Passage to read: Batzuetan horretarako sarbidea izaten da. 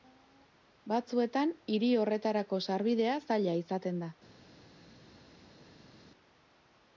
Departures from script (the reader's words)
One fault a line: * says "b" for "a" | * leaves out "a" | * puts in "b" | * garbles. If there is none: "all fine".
* puts in "hiri"
* puts in "zaila"